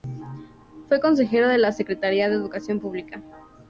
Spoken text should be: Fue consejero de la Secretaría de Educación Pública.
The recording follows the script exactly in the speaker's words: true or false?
true